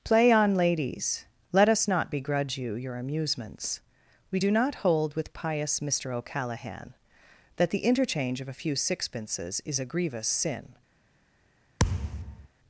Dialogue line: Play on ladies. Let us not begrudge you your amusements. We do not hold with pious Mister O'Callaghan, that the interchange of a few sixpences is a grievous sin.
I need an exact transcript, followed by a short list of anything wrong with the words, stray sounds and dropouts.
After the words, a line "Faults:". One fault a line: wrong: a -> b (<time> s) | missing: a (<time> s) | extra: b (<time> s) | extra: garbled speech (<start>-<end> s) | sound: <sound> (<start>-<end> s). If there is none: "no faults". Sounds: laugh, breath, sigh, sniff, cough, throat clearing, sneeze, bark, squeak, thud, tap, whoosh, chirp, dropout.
Play on ladies. Let us not begrudge you your amusements. We do not hold with pious Mister O'Callaghan, that the interchange of a few sixpences is a grievous sin.
Faults:
sound: thud (11.8-12.5 s)